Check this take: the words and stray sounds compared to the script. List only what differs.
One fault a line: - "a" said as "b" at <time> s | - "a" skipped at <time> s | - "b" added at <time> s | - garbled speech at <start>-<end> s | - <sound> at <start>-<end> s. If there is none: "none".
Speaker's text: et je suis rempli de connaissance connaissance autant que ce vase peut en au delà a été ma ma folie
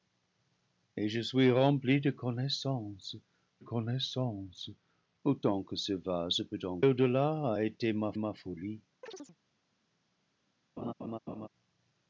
- chirp at 9.0-9.4 s
- laugh at 10.8-11.5 s